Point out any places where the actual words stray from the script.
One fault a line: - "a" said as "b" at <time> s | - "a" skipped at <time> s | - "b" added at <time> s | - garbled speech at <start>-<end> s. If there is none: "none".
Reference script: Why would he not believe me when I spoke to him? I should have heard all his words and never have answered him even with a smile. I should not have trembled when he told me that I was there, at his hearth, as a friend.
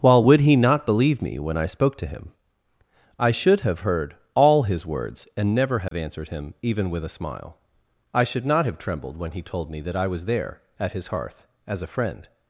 - "Why" said as "While" at 0.0 s